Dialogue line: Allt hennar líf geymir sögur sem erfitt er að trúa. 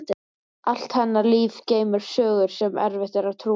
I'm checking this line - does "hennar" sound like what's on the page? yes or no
yes